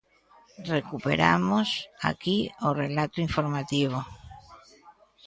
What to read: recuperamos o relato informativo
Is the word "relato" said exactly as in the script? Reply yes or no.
yes